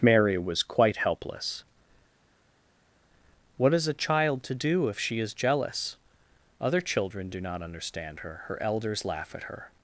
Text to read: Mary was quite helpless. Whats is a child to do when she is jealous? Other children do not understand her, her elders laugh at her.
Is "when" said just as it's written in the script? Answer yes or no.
no